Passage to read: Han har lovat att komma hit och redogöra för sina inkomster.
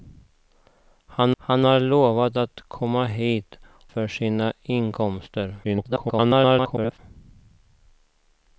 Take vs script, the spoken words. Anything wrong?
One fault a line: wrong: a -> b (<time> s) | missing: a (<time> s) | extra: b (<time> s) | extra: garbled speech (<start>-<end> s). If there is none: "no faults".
extra: han (1.4 s)
missing: och redogöra (3.6 s)
extra: garbled speech (5.6-7.0 s)